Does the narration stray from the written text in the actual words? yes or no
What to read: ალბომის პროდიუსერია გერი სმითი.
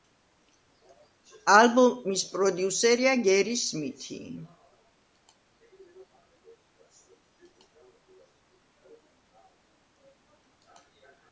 no